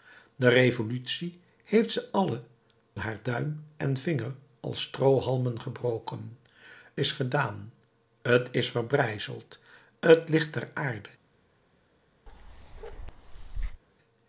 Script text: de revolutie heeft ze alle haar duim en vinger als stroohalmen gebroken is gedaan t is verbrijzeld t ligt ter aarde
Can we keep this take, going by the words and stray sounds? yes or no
no